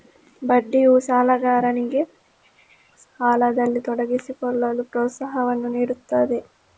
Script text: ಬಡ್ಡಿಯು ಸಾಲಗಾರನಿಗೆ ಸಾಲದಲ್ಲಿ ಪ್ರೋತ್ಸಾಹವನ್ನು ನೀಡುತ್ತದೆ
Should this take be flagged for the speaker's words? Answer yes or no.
yes